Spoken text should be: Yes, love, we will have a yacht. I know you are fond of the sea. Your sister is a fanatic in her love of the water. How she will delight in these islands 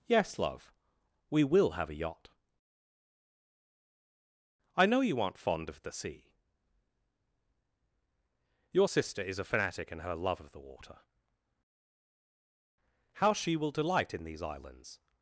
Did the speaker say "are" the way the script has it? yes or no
no